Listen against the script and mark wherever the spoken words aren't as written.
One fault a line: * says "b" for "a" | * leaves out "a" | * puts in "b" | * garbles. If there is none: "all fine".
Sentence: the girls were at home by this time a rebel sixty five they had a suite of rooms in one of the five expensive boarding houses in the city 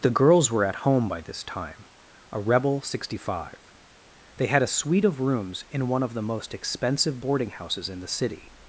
* says "most" for "five"